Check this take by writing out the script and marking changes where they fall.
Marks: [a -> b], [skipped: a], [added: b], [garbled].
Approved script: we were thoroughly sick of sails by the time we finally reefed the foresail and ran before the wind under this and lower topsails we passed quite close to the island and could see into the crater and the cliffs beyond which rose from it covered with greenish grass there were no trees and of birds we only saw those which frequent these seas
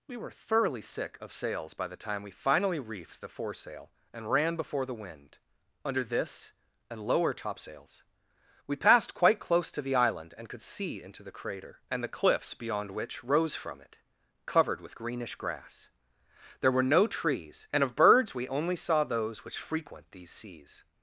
we were thoroughly sick of sails by the time we finally reefed the foresail and ran before the wind under this and lower topsails we passed quite close to the island and could see into the crater and the cliffs beyond which rose from it covered with greenish grass there were no trees and of birds we only saw those which frequent these seas